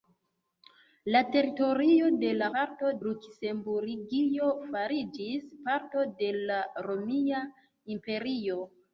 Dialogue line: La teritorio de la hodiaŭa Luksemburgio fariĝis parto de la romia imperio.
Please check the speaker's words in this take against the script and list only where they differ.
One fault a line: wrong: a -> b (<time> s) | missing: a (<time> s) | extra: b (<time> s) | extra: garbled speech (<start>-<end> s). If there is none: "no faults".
wrong: hodiaŭa -> parto (2.6 s)